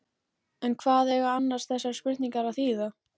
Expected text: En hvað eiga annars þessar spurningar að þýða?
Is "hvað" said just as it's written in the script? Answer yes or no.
yes